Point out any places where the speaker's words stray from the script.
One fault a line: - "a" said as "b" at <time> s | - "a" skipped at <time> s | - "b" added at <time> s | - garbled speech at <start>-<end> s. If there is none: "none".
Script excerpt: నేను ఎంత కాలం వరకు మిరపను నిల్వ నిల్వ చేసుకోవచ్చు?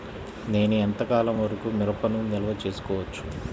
- "నిల్వ" skipped at 2.5 s